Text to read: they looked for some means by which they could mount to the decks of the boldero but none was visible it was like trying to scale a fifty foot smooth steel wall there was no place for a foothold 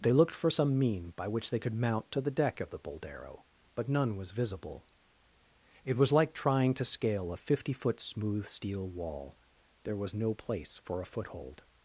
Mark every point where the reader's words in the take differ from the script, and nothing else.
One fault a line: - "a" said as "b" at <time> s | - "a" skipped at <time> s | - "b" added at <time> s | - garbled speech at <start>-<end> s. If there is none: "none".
- "means" said as "mean" at 0.8 s
- "decks" said as "deck" at 2.3 s